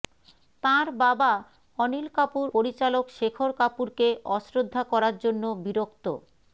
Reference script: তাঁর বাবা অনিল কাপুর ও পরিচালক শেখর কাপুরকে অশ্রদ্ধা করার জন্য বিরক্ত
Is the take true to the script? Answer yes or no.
no